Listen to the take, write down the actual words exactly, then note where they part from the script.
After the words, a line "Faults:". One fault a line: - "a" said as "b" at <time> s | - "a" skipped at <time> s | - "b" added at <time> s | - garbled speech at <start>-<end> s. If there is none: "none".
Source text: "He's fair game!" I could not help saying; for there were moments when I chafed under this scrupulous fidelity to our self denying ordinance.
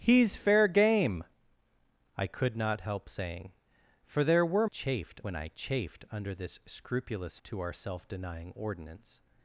"He's fair game!" I could not help saying; for there were chafed when I chafed under this scrupulous to our self denying ordinance.
Faults:
- "moments" said as "chafed" at 4.6 s
- "fidelity" skipped at 7.4 s